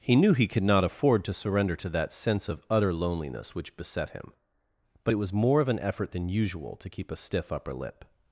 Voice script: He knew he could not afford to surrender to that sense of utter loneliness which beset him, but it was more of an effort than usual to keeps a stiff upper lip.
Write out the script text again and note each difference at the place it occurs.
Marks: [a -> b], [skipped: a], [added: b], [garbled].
He knew he could not afford to surrender to that sense of utter loneliness which beset him, but it was more of an effort than usual to [keeps -> keep] a stiff upper lip.